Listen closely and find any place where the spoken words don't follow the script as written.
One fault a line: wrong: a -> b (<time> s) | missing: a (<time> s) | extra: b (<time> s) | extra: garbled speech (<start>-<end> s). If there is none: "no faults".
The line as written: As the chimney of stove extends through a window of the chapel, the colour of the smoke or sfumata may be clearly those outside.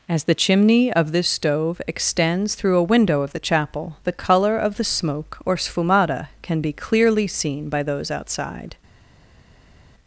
extra: this (1.1 s)
wrong: may -> can (6.4 s)
extra: seen by (7.3 s)